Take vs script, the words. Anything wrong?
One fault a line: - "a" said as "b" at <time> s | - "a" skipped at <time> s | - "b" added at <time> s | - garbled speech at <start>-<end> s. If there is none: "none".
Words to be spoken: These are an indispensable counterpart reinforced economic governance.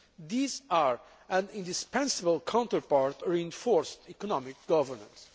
none